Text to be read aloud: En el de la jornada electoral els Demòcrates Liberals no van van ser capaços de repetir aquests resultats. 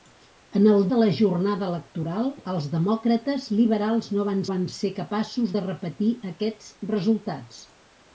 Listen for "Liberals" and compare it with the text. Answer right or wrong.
right